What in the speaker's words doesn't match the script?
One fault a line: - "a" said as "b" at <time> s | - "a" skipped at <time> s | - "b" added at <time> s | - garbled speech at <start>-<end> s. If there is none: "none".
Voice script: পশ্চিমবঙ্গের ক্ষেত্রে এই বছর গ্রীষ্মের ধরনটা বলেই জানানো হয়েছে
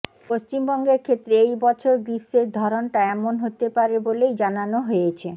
- "এমন হতে পারে" added at 3.1 s